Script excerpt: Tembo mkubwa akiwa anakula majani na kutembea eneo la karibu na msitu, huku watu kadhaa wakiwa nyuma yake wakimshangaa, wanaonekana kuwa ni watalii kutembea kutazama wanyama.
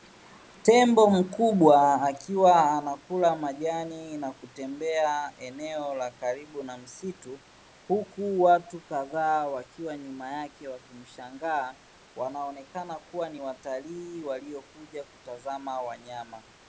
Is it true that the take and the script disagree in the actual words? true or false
true